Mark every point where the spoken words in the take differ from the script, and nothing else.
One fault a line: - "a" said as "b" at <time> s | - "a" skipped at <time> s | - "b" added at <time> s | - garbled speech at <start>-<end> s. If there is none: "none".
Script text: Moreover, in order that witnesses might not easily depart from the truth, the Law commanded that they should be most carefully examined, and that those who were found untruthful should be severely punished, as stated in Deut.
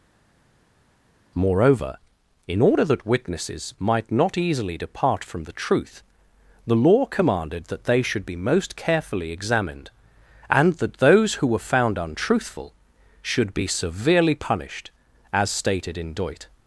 none